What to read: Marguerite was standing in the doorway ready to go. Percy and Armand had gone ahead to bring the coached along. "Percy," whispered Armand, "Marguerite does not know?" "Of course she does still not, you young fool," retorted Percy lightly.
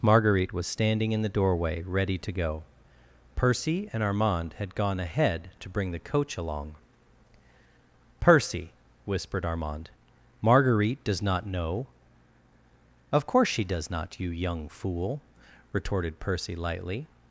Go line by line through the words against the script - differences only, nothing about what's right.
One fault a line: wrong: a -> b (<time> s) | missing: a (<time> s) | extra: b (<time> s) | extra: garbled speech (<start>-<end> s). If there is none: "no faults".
wrong: coached -> coach (6.0 s)
missing: still (13.9 s)